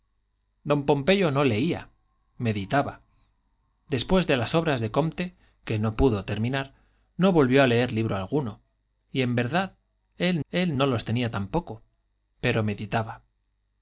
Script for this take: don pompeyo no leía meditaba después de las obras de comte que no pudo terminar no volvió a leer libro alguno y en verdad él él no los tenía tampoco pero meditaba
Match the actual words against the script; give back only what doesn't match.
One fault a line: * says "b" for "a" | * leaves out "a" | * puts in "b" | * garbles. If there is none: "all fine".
all fine